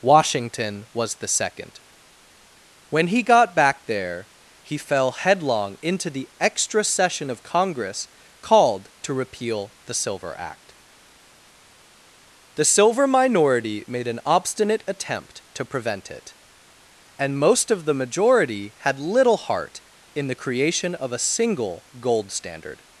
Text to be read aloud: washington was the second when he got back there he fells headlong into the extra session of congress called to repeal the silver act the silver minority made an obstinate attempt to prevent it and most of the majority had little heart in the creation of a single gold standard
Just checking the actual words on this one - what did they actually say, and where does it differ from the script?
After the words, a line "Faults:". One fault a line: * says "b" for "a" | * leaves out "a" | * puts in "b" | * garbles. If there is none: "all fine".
washington was the second when he got back there he fell headlong into the extra session of congress called to repeal the silver act the silver minority made an obstinate attempt to prevent it and most of the majority had little heart in the creation of a single gold standard
Faults:
* says "fell" for "fells"